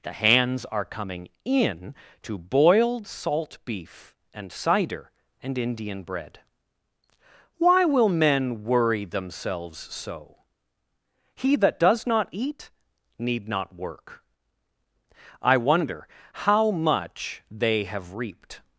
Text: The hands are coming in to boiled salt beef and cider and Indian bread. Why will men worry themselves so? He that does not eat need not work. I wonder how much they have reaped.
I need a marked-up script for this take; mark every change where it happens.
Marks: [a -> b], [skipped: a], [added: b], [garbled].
The hands are coming in to boiled salt beef and cider and Indian bread. Why will men worry themselves so? He that does not eat need not work. I wonder how much they have reaped.